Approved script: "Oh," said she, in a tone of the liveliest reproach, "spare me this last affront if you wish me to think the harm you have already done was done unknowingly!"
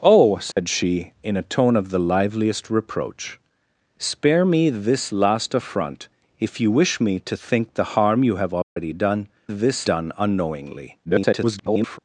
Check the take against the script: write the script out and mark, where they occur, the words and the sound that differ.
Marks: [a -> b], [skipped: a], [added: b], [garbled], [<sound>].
"Oh," said [dropout] she, in a tone of the liveliest reproach, "spare me this last affront if you wish me to think the harm you have already [dropout] done [was -> this] done unknowingly!" [garbled]